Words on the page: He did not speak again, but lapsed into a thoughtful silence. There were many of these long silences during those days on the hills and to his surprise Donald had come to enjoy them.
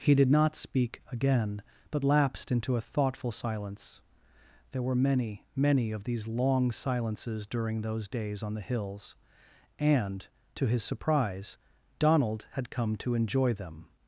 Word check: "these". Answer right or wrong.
right